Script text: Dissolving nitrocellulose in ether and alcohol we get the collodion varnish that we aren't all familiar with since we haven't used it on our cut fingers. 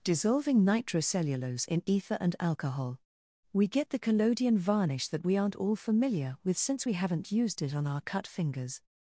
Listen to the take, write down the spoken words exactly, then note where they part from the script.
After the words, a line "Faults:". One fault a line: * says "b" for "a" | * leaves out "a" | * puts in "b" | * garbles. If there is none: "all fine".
Dissolving nitrocellulose in ether and alcohol we get the collodion varnish that we aren't all familiar with since we haven't used it on our cut fingers.
Faults:
all fine